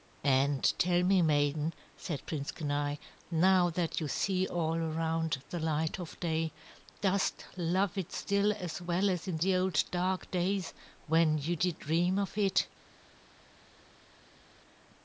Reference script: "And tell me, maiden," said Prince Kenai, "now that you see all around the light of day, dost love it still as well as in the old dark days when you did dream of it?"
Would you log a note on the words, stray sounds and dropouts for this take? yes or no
no